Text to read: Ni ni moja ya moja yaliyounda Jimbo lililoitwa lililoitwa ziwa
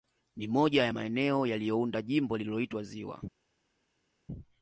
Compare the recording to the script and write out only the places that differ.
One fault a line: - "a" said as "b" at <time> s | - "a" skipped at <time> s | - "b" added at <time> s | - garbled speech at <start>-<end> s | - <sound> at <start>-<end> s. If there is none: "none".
- "ni" skipped at 0.5 s
- "moja" said as "maeneo" at 0.9 s
- "lililoitwa" skipped at 2.8 s